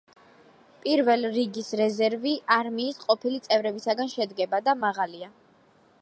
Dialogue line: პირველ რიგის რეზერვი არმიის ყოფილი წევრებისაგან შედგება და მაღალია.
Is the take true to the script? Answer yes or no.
yes